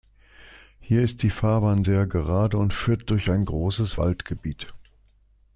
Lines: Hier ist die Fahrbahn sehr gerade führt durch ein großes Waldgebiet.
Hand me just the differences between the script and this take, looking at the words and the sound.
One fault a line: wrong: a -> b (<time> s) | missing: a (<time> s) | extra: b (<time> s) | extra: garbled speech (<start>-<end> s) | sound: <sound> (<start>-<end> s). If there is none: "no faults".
extra: und (2.6 s)